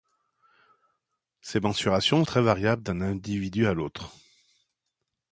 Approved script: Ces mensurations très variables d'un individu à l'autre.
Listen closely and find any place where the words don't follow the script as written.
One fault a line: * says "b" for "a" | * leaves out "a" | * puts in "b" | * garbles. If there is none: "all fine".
all fine